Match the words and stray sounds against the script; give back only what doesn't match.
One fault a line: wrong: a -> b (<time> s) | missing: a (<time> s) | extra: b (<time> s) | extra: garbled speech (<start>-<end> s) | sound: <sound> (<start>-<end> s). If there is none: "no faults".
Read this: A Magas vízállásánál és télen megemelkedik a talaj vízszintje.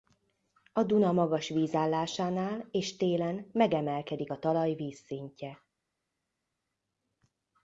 extra: Duna (0.8 s)